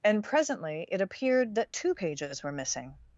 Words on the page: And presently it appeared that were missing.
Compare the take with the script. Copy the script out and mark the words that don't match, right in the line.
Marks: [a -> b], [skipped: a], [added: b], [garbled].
And presently it appeared that [added: two pages] were missing.